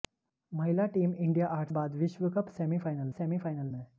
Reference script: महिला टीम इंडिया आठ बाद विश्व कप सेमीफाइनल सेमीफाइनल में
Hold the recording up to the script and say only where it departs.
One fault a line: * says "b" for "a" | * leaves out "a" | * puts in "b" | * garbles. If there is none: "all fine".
all fine